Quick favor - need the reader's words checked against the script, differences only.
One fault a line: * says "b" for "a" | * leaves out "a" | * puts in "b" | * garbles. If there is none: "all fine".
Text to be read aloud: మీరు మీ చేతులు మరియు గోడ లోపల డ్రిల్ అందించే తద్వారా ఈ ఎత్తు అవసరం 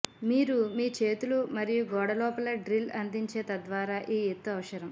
all fine